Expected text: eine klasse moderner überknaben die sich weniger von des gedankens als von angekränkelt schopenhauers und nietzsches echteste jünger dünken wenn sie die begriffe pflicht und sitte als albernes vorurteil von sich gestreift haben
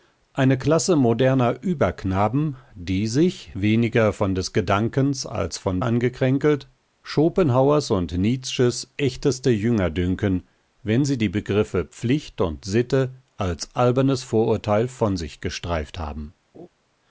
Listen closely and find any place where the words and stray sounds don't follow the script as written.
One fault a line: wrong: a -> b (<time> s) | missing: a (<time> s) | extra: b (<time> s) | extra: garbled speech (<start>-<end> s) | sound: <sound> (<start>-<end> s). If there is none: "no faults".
sound: laugh (16.5-16.7 s)